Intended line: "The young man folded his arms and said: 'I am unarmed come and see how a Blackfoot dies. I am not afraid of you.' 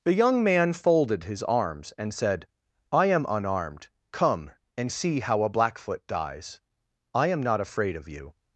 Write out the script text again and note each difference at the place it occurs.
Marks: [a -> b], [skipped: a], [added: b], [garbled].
"The young man folded his arms and said: 'I am unarmed come and see how a Blackfoot dies. I am not afraid of you.'